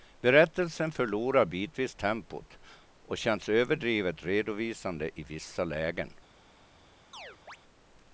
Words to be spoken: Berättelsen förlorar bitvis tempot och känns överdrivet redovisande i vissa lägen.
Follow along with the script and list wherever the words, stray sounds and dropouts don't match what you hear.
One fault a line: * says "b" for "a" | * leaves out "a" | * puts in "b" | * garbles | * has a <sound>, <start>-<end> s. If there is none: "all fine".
* has a chirp, 7.1-7.6 s